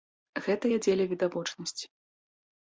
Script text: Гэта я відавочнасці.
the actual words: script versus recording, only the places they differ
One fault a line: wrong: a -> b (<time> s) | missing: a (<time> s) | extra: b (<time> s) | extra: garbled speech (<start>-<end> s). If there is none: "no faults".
extra: дзеля (0.9 s)